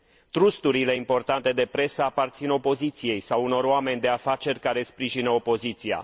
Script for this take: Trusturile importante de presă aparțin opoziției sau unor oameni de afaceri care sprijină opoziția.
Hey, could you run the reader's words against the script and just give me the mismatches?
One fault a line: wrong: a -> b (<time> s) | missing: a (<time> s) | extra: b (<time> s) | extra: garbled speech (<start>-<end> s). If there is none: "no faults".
no faults